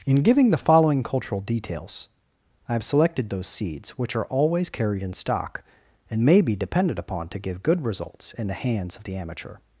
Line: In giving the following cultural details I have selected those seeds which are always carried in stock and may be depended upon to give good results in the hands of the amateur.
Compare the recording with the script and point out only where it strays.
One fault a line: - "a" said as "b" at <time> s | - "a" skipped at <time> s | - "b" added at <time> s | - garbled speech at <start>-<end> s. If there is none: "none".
none